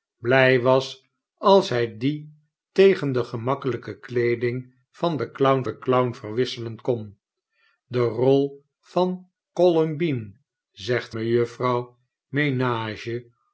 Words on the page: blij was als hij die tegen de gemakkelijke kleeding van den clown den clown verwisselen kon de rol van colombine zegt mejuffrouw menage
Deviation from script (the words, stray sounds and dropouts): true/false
false